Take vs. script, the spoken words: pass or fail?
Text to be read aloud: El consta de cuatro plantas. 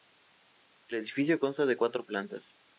fail